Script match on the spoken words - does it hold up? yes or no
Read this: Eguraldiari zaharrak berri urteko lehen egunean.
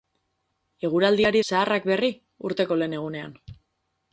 yes